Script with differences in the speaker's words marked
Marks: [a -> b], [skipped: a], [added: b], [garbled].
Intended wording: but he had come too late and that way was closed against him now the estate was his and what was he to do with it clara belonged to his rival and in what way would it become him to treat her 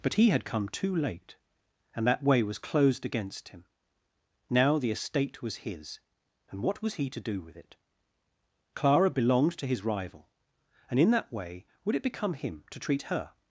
but he had come too late and that way was closed against him now the estate was his and what was he to do with it clara belonged to his rival and in [what -> that] way would it become him to treat her